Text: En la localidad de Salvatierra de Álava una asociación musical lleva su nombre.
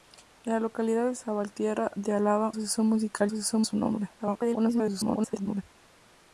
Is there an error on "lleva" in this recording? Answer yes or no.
yes